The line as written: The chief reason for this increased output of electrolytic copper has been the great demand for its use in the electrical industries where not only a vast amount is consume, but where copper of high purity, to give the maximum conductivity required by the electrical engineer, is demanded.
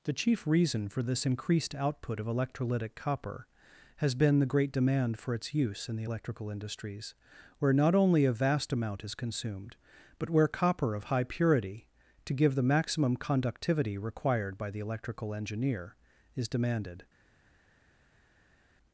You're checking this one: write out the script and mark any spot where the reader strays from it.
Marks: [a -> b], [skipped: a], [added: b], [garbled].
The chief reason for this increased output of electrolytic copper has been the great demand for its use in the electrical industries where not only a vast amount is [consume, -> consumed] but where copper of high purity, to give the maximum conductivity required by the electrical engineer, is demanded.